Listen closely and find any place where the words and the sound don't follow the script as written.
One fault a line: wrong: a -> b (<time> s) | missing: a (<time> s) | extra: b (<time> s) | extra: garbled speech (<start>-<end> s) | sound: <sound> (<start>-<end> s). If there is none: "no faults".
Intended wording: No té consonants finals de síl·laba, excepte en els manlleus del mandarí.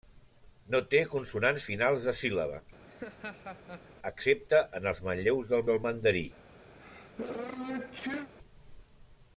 sound: laugh (2.9-3.9 s)
extra: del (5.7 s)
sound: sneeze (6.7-8.3 s)